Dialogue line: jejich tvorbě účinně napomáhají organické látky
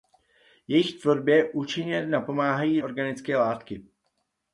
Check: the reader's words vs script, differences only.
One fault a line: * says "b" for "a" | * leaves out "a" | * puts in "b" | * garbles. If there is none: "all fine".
all fine